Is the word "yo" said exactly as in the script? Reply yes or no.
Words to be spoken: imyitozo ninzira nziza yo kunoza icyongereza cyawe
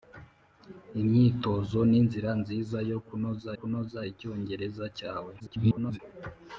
yes